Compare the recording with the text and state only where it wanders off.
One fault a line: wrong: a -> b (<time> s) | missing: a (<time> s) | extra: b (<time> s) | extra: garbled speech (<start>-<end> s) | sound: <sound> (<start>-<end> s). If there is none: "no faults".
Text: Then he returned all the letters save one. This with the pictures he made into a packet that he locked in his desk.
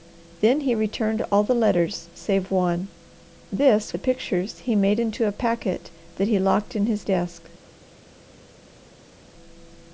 missing: with (3.9 s)